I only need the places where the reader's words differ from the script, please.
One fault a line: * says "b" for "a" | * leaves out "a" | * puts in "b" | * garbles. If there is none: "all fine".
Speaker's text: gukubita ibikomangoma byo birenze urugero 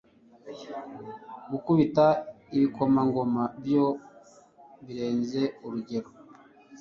all fine